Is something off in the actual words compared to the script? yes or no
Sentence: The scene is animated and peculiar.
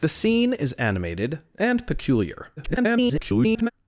yes